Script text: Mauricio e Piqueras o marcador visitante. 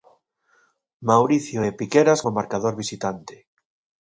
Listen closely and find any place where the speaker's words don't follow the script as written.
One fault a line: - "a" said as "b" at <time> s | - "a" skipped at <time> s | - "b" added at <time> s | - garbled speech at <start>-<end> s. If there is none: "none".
none